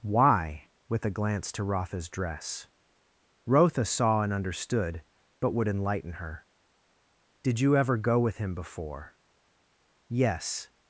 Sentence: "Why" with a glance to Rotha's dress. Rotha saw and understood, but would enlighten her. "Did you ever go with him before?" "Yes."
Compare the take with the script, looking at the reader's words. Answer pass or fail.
pass